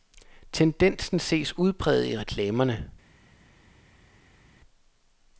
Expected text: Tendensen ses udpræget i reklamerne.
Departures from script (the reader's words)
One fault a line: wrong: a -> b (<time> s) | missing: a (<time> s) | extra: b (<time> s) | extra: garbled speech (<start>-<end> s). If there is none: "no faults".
no faults